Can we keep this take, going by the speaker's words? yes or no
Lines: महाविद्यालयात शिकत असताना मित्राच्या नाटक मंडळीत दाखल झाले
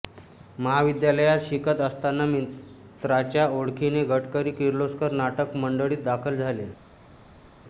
no